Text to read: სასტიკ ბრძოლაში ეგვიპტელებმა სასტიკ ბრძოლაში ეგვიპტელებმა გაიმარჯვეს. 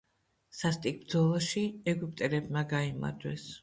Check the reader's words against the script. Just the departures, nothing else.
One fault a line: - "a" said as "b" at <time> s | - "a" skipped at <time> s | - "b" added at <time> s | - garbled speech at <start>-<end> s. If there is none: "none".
- "სასტიკ ბრძოლაში ეგვიპტელებმა" skipped at 2.7 s